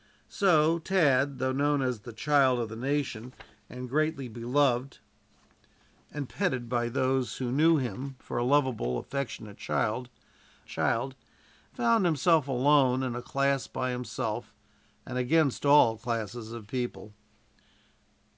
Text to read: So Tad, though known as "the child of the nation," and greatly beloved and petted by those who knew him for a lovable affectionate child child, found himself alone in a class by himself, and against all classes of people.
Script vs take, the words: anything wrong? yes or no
no